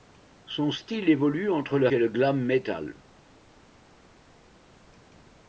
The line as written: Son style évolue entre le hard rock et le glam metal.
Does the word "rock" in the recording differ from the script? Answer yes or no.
yes